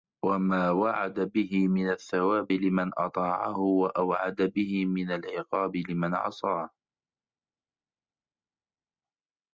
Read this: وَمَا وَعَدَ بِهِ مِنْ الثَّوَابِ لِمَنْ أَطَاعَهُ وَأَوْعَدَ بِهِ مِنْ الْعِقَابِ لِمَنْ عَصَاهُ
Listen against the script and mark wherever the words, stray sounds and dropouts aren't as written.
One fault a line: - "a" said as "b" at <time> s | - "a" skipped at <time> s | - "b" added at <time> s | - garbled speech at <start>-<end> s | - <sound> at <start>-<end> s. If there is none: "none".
none